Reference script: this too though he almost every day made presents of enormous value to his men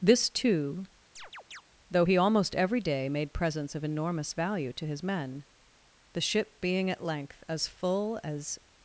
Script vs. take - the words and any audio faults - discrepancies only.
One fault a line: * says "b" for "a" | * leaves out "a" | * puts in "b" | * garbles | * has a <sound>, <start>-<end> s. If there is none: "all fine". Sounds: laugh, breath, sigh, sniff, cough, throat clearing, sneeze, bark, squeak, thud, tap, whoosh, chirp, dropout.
* has a chirp, 1.2-1.6 s
* puts in "the ship being at length as full as"